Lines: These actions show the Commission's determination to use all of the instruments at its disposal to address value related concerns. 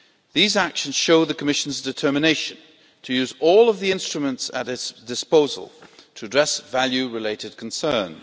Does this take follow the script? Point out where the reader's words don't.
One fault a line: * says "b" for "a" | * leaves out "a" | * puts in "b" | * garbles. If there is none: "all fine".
all fine